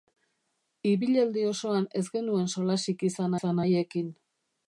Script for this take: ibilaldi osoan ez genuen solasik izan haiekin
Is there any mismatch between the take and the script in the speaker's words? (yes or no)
yes